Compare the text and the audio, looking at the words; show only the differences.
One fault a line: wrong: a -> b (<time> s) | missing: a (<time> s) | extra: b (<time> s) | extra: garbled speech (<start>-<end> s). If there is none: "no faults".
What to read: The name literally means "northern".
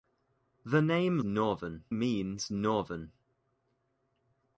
wrong: literally -> northern (1.2 s)